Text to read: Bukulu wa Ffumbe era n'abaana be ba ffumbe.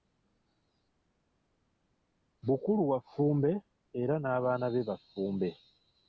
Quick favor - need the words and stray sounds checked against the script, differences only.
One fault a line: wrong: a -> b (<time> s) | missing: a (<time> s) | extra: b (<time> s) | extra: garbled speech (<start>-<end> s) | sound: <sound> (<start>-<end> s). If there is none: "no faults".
no faults